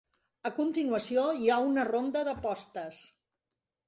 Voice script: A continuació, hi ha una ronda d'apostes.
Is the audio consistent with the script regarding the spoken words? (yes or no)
yes